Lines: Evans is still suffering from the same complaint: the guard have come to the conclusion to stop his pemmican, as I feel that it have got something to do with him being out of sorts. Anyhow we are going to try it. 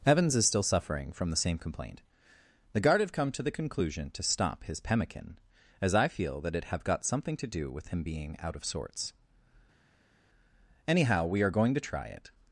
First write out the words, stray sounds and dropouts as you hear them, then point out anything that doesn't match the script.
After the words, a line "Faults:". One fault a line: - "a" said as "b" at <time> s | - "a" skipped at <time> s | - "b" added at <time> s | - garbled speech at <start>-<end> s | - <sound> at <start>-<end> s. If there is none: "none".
Evans is still suffering from the same complaint: the guard have come to the conclusion to stop his pemmican, as I feel that it have got something to do with him being out of sorts. Anyhow we are going to try it.
Faults:
none